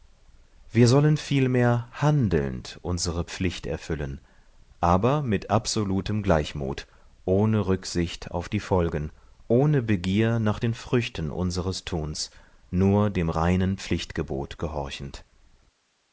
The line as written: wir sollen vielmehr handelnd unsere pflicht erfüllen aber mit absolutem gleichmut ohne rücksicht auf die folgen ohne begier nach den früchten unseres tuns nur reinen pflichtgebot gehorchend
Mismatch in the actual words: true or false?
true